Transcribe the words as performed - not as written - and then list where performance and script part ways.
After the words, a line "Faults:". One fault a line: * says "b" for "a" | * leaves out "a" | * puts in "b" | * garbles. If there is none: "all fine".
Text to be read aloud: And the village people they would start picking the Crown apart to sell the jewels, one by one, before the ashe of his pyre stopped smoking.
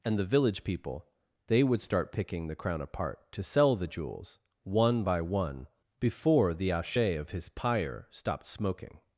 And the village people they would start picking the Crown apart to sell the jewels, one by one, before the ashe of his pyre stopped smoking.
Faults:
all fine